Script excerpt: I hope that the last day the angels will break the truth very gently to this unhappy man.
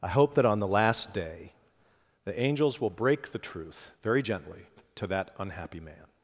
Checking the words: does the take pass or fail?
fail